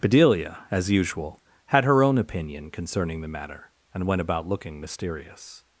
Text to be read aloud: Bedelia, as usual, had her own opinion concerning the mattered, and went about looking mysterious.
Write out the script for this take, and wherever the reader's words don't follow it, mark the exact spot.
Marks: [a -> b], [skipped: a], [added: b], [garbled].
Bedelia, as usual, had her own opinion concerning the [mattered, -> matter] and went about looking mysterious.